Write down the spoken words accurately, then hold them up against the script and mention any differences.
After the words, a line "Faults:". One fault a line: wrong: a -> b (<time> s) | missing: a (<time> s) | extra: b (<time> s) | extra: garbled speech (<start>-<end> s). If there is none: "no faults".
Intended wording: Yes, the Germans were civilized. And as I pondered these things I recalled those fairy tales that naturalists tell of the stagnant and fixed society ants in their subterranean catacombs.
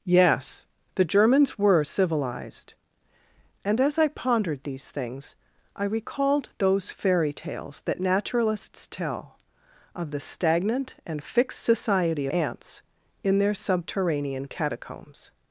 Yes, the Germans were civilized. And as I pondered these things I recalled those fairy tales that naturalists tell of the stagnant and fixed society ants in their subterranean catacombs.
Faults:
no faults